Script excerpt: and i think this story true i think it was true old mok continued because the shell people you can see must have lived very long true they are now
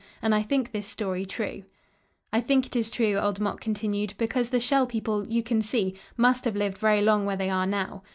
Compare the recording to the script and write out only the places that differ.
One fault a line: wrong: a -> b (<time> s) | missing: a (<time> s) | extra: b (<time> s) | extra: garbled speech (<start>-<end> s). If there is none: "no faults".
wrong: was -> is (2.8 s)
wrong: true -> where (7.3 s)